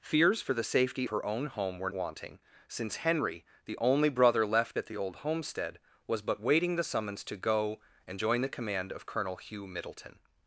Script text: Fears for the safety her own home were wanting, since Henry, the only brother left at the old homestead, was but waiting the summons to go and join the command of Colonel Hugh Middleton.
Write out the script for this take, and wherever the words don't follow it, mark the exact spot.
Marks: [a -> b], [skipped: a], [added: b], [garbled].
Fears for the safety her own home were wanting, since Henry, the only brother left at the old homestead, was but waiting the summons to go and join the command of Colonel Hugh Middleton.